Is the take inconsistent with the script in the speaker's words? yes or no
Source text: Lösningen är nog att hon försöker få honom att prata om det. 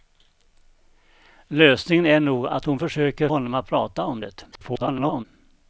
yes